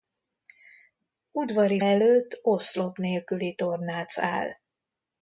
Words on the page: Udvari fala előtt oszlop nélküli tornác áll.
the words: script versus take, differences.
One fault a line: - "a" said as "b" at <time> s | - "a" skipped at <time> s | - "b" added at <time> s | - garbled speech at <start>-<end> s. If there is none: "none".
- "fala" skipped at 1.8 s